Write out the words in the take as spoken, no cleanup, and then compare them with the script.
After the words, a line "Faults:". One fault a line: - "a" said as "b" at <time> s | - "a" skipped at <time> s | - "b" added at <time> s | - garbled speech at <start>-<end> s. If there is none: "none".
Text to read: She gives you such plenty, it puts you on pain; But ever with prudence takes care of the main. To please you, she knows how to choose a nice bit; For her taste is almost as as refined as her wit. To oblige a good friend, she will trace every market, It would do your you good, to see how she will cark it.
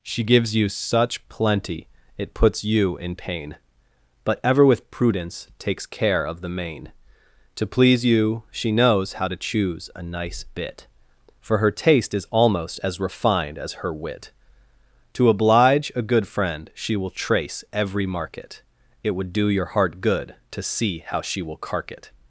She gives you such plenty, it puts you in pain; But ever with prudence takes care of the main. To please you, she knows how to choose a nice bit; For her taste is almost as refined as her wit. To oblige a good friend, she will trace every market, It would do your heart good, to see how she will cark it.
Faults:
- "on" said as "in" at 3.0 s
- "as" skipped at 13.0 s
- "you" said as "heart" at 19.7 s